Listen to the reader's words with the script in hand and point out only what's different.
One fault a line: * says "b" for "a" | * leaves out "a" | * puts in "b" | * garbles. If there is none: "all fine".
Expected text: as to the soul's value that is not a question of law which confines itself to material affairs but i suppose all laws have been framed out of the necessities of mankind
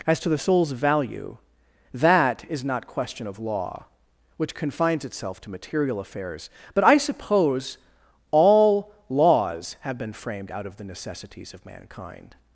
* leaves out "a"